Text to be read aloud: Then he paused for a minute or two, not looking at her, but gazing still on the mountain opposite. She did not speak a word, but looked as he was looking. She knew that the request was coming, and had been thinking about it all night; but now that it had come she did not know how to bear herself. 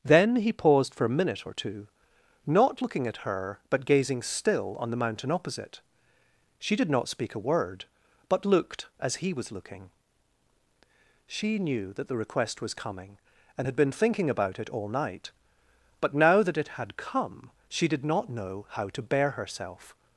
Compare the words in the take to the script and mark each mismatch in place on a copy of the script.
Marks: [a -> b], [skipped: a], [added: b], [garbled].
Then he paused for a minute or two, not looking at her, but gazing still on the mountain opposite. She did not speak a word, but looked as he was looking. She knew that the request was coming, and had been thinking about it all night; but now that it had come she did not know how to bear herself.